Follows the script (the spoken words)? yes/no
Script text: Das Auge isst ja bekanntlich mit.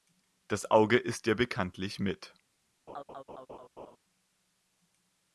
yes